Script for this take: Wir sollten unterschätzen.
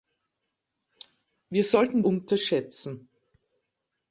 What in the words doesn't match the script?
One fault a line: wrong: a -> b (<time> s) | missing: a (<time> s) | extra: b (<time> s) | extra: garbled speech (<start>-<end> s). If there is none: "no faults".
no faults